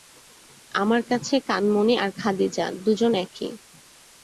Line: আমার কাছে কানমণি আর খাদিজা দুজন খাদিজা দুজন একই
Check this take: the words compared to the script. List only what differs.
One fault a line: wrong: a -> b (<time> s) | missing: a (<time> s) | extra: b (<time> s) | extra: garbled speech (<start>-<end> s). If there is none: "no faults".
missing: খাদিজা দুজন (3.1 s)